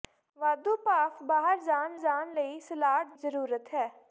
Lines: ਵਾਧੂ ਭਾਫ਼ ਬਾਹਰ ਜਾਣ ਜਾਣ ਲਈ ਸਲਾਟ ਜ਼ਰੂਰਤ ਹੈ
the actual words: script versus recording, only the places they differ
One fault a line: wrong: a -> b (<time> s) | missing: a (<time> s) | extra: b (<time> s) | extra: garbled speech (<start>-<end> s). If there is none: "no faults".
no faults